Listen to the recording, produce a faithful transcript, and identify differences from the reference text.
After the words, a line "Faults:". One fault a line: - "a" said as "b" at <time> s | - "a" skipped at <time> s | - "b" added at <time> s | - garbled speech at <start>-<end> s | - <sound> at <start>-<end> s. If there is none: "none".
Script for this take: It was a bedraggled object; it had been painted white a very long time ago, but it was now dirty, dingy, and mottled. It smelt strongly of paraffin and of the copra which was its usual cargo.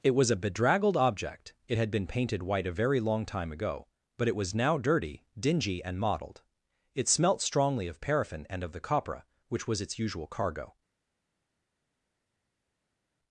It was a bedraggled object; it had been painted white a very long time ago, but it was now dirty, dingy, and mottled. It smelt strongly of paraffin and of the copra which was its usual cargo.
Faults:
none